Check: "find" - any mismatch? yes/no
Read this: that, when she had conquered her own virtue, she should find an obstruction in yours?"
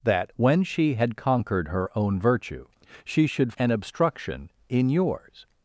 yes